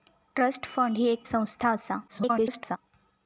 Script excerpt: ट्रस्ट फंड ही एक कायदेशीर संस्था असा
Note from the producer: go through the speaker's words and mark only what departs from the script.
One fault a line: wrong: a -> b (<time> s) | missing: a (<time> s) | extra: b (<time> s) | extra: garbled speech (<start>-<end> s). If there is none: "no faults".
missing: कायदेशीर (1.2 s)
extra: garbled speech (2.1-2.8 s)